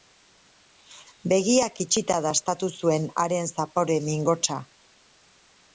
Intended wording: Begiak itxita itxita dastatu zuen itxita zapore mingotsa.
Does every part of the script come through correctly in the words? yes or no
no